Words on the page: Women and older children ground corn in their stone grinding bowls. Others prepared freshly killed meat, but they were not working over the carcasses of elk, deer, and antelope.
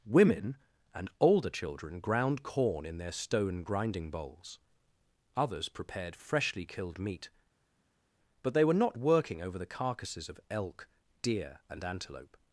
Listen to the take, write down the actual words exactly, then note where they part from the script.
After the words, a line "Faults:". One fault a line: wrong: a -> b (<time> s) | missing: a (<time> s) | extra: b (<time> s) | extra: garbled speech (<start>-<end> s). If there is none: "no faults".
Women and older children ground corn in their stone grinding bowls. Others prepared freshly killed meat, but they were not working over the carcasses of elk, deer, and antelope.
Faults:
no faults